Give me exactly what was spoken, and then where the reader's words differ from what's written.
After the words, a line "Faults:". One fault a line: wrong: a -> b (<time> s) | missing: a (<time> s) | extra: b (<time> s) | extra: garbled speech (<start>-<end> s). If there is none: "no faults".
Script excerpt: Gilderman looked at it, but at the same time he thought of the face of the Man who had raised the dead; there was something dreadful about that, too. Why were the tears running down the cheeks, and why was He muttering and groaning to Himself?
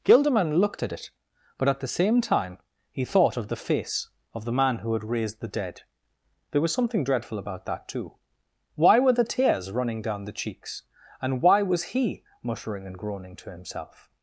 Gilderman looked at it, but at the same time he thought of the face of the Man who had raised the dead; there was something dreadful about that, too. Why were the tears running down the cheeks, and why was He muttering and groaning to Himself?
Faults:
no faults